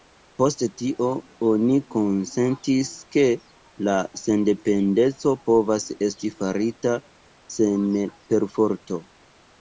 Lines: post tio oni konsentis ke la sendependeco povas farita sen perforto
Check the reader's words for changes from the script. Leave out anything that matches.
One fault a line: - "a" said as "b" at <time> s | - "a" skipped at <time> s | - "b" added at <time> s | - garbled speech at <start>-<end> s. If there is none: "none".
- "esti" added at 6.1 s